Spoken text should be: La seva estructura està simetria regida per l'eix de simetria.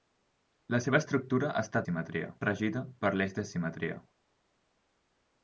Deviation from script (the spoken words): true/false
false